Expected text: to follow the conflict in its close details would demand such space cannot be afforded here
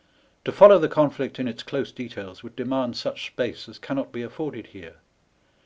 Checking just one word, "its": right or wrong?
right